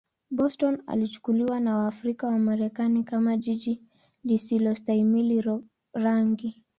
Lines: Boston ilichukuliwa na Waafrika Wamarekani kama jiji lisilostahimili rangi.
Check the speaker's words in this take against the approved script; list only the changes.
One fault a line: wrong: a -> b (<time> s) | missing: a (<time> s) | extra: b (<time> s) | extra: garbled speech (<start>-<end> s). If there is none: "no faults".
no faults